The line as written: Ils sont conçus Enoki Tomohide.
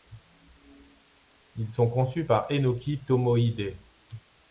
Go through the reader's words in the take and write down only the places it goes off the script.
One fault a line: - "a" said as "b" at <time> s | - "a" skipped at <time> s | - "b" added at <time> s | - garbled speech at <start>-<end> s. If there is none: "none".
- "par" added at 2.2 s